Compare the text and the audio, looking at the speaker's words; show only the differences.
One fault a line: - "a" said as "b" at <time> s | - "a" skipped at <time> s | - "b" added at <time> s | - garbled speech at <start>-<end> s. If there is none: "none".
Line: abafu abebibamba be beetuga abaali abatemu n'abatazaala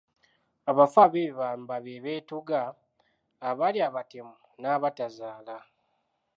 none